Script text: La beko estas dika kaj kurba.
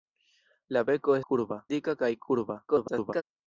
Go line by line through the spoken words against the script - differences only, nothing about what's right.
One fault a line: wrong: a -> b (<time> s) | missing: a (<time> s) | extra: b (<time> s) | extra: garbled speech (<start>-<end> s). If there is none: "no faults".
wrong: estas -> kurba (1.3 s)
extra: garbled speech (2.7-3.2 s)